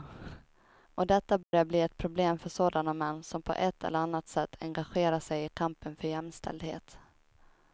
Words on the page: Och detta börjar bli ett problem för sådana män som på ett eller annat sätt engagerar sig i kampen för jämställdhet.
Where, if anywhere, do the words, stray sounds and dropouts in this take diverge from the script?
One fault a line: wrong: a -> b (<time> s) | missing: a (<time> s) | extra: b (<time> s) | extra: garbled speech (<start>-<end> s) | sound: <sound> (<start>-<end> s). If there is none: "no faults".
sound: dropout (1.4-1.5 s)